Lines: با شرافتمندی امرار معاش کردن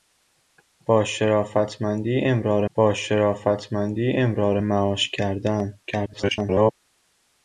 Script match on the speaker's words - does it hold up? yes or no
no